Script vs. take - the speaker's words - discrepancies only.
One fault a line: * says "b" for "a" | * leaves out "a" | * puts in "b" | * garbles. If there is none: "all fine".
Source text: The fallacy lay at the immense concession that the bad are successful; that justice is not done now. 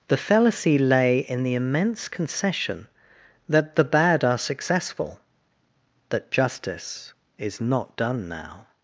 * says "in" for "at"